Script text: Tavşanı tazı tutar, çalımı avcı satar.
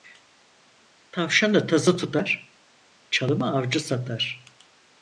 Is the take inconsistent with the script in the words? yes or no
no